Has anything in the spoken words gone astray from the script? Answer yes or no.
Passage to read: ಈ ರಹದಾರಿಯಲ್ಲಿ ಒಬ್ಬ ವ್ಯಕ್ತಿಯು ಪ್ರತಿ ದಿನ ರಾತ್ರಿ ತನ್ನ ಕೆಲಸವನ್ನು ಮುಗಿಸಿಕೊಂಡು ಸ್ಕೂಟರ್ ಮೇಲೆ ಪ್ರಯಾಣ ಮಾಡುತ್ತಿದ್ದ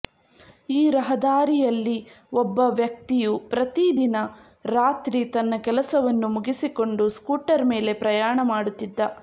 no